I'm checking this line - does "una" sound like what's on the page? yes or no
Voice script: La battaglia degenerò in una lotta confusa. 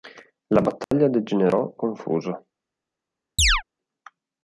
no